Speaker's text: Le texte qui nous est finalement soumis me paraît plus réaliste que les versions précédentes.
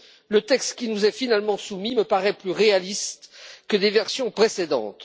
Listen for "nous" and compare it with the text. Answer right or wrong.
right